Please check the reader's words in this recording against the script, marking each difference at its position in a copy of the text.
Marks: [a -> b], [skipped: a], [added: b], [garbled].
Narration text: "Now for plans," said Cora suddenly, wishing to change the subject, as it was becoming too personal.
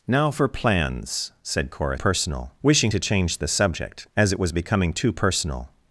"Now for plans," said Cora [suddenly, -> personal] wishing to change the subject, as it was becoming too personal.